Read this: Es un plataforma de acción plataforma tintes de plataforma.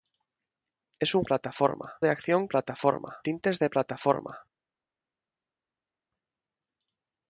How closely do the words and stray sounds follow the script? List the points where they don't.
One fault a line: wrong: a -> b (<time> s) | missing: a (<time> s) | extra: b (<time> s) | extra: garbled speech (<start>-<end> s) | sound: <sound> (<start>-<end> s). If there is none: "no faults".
no faults